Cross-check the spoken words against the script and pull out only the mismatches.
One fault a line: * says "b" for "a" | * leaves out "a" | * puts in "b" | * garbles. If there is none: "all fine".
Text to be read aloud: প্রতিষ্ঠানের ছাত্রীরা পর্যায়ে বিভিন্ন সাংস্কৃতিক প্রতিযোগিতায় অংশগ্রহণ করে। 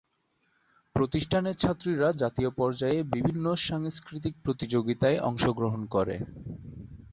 * puts in "জাতীয়"